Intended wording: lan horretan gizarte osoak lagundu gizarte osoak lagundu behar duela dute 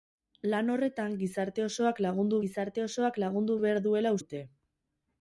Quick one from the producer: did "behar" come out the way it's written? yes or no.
yes